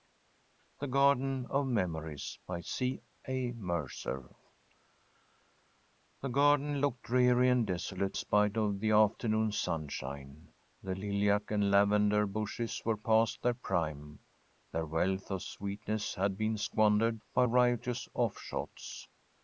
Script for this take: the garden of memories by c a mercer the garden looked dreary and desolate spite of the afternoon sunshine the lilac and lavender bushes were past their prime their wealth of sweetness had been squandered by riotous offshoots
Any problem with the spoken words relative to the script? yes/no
no